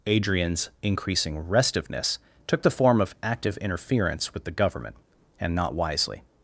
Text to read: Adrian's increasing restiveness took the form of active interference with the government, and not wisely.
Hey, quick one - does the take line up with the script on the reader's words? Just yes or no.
yes